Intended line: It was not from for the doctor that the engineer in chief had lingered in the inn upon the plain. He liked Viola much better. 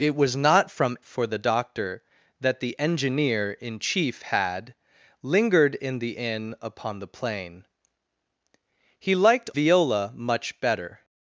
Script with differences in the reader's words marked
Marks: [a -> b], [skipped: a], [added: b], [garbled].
It was not from for the doctor that the engineer in chief had lingered in the inn upon the plain. He liked Viola much better.